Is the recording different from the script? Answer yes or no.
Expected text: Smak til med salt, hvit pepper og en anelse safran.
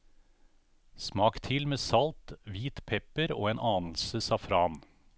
no